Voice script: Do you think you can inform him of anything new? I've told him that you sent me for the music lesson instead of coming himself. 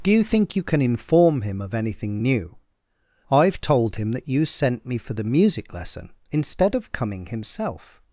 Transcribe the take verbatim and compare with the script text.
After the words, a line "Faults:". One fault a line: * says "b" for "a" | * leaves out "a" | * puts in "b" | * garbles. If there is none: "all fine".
Do you think you can inform him of anything new? I've told him that you sent me for the music lesson instead of coming himself.
Faults:
all fine